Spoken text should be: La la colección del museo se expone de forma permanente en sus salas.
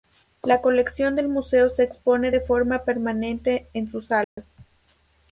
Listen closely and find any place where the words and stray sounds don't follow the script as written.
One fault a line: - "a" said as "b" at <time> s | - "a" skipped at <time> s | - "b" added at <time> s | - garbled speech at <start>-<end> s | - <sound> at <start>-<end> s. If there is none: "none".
- "la" skipped at 0.6 s
- dropout at 4.2-4.4 s